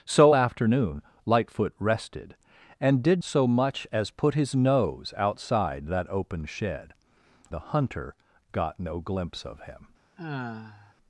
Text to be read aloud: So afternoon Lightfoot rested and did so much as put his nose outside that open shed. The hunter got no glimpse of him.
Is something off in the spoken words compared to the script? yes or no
no